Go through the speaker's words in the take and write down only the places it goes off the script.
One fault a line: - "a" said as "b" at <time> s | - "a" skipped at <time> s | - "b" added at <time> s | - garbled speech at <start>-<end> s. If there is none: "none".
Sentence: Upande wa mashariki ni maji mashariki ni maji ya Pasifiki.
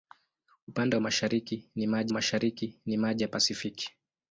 none